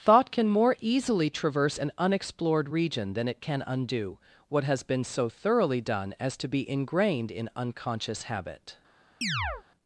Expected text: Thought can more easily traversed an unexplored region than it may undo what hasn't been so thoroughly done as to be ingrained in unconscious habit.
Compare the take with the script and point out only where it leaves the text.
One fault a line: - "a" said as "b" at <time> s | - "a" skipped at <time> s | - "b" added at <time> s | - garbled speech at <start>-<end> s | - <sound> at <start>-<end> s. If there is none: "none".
- "traversed" said as "traverse" at 1.3 s
- "may" said as "can" at 3.4 s
- "hasn't" said as "has" at 4.6 s
- chirp at 9.2-9.6 s